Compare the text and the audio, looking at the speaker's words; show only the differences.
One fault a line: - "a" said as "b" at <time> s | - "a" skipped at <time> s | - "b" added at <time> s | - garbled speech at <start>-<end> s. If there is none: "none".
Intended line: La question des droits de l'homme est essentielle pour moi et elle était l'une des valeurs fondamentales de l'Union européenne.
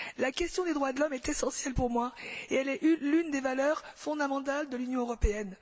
- "était" said as "est" at 2.7 s